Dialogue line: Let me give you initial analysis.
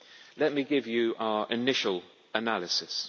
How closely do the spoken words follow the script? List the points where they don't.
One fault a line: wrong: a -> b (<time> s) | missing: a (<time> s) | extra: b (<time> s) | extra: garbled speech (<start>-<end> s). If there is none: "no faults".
extra: our (1.2 s)